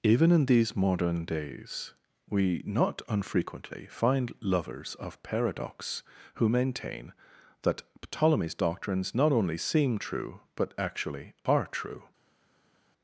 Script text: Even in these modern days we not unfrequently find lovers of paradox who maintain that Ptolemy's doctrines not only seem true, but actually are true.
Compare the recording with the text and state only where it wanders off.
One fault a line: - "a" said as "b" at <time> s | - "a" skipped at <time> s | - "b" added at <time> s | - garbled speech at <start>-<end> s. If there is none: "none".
none